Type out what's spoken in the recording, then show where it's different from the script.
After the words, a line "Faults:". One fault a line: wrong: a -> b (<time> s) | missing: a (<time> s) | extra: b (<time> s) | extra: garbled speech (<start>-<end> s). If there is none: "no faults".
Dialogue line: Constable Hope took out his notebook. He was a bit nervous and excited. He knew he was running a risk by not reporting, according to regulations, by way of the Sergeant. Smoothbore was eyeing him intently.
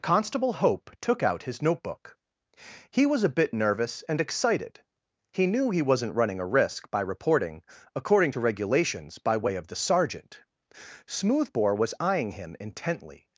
Constable Hope took out his notebook. He was a bit nervous and excited. He knew he wasn't running a risk by reporting, according to regulations, by way of the Sergeant. Smoothbore was eyeing him intently.
Faults:
wrong: was -> wasn't (5.8 s)
missing: not (7.0 s)